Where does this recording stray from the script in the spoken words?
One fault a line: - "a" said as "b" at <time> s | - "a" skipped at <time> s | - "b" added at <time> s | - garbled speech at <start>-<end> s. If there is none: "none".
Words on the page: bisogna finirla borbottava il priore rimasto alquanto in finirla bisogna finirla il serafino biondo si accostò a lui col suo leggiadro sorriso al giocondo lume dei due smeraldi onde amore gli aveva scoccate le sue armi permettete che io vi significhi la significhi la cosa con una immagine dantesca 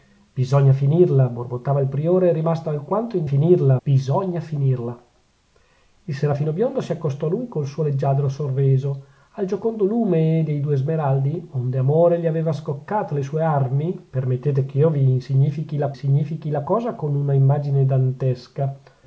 none